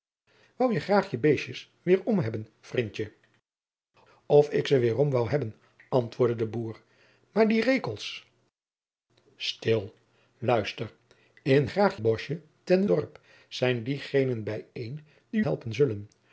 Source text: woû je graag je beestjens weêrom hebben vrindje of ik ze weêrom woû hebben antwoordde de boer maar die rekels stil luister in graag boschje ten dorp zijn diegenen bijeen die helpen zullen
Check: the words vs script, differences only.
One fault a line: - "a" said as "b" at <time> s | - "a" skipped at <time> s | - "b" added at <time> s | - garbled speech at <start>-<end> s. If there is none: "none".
none